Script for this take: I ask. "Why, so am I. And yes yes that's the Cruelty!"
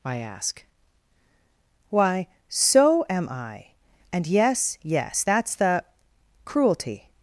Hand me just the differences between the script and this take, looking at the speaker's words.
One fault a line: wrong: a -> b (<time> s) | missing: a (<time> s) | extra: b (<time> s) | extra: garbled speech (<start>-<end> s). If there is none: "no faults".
no faults